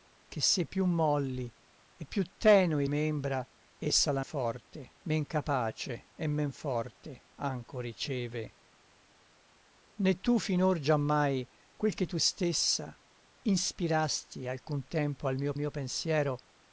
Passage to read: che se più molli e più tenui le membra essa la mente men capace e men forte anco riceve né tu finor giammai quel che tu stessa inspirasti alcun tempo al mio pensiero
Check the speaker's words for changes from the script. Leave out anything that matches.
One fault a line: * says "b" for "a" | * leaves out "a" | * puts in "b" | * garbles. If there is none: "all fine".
* leaves out "le"
* says "forte" for "mente"
* puts in "mio"